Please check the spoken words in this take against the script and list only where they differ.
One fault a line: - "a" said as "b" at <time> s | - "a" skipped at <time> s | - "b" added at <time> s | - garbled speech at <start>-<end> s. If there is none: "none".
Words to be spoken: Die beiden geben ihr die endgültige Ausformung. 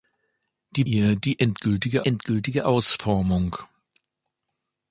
- "beiden geben" skipped at 0.8 s
- "endgültige" added at 2.0 s